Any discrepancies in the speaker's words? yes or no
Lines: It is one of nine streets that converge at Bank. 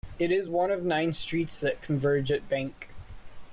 no